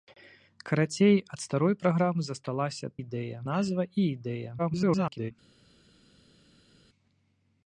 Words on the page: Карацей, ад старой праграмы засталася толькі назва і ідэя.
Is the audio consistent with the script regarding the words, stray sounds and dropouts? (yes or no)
no